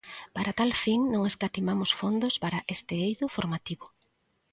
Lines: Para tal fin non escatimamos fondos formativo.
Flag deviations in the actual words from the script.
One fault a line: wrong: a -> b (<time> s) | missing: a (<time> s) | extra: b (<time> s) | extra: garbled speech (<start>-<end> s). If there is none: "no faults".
extra: para este eido (2.4 s)